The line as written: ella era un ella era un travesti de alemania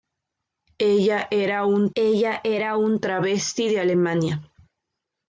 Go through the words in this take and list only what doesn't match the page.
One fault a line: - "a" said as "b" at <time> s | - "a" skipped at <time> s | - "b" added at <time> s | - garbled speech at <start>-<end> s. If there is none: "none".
none